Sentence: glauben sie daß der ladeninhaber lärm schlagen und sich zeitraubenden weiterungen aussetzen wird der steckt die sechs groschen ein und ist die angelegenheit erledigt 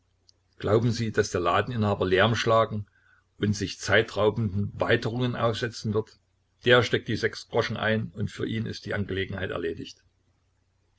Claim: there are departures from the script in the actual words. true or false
true